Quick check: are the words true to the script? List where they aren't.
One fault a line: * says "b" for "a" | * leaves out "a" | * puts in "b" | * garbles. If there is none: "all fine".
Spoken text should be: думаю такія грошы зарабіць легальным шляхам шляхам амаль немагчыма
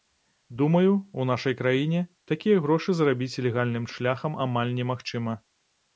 * puts in "у нашай краіне"
* leaves out "шляхам"